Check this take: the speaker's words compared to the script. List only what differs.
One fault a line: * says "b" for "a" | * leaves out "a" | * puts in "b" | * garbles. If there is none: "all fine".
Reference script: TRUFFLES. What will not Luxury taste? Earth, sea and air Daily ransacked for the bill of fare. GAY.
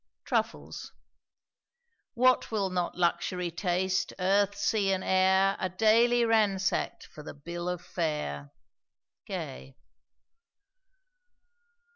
* puts in "Are"